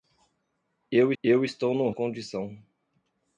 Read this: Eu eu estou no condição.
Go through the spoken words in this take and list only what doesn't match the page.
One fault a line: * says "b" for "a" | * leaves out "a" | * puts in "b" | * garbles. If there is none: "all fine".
all fine